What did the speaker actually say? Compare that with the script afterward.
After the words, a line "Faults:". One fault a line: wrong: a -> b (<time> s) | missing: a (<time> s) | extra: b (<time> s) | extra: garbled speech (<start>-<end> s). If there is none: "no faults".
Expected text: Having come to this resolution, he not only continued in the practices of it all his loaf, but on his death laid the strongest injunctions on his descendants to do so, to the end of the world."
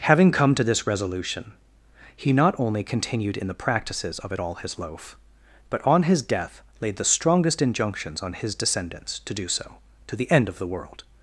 Having come to this resolution, he not only continued in the practices of it all his loaf, but on his death laid the strongest injunctions on his descendants to do so, to the end of the world."
Faults:
no faults